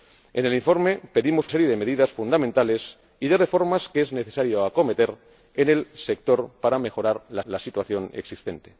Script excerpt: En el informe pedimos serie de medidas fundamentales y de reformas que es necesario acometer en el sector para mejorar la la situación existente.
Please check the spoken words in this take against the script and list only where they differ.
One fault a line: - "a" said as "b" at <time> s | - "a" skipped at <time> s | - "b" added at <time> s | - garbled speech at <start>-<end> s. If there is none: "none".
none